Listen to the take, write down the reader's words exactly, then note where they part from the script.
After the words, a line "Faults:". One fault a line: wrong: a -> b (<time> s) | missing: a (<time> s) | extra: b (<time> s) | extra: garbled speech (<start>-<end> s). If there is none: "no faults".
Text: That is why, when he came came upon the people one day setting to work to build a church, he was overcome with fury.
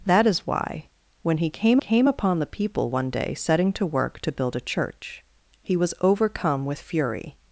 That is why, when he came came upon the people one day setting to work to build a church, he was overcome with fury.
Faults:
no faults